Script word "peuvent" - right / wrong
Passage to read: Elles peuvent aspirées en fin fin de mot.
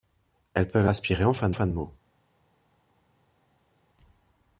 right